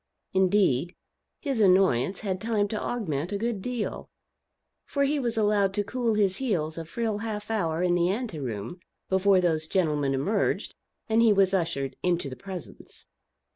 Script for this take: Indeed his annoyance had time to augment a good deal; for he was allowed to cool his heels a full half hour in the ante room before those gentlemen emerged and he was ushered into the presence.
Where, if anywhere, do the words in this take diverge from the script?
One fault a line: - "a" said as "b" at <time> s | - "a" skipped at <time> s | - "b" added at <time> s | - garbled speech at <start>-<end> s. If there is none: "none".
none